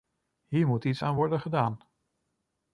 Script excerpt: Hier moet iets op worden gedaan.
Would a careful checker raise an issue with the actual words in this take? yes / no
yes